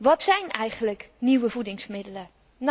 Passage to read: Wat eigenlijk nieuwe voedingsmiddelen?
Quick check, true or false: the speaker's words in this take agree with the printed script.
false